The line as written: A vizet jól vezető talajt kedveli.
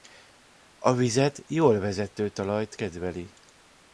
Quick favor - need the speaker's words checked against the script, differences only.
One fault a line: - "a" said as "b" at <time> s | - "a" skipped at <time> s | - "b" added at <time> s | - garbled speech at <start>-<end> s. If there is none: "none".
none